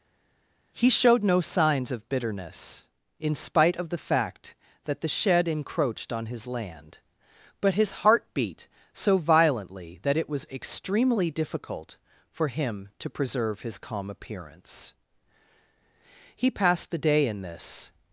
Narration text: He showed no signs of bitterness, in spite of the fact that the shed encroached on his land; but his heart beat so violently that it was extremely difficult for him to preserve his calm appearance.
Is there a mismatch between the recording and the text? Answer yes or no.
yes